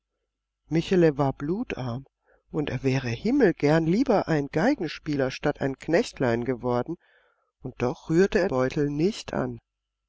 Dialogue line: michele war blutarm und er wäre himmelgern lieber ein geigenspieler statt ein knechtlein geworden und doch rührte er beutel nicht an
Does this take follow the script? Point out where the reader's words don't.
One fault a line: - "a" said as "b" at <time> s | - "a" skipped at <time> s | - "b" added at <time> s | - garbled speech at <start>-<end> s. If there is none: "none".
none